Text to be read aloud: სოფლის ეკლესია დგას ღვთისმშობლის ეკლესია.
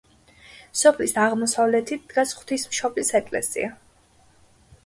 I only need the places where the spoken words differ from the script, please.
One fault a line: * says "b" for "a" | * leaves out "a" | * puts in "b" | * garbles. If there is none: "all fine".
* says "აღმოსავლეთით" for "ეკლესია"